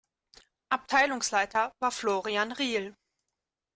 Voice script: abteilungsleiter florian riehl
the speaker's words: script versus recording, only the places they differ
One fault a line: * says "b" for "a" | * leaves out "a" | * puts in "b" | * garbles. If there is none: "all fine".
* puts in "war"